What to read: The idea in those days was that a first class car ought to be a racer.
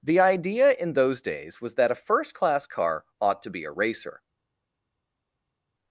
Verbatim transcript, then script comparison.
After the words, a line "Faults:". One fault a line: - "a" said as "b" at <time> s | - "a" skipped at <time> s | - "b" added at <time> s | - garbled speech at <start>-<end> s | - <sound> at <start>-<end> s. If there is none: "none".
The idea in those days was that a first class car ought to be a racer.
Faults:
none